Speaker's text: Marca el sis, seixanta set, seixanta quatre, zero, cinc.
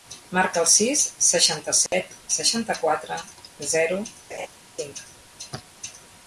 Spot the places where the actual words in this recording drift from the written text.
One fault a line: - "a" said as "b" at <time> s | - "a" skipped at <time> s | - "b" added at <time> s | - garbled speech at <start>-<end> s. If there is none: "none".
none